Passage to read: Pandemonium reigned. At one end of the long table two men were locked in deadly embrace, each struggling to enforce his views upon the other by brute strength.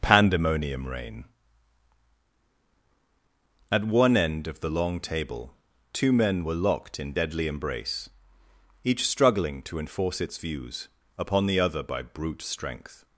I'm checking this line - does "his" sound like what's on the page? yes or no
no